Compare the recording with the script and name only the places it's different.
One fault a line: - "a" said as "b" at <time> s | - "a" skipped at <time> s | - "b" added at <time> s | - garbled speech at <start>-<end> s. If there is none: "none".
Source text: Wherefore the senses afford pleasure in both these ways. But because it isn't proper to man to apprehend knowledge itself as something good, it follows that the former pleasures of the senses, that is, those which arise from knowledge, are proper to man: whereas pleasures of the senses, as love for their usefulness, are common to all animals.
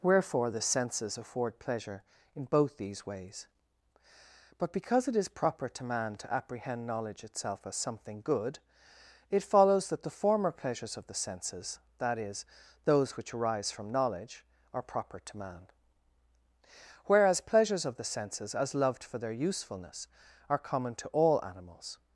- "isn't" said as "is" at 5.2 s
- "love" said as "loved" at 18.7 s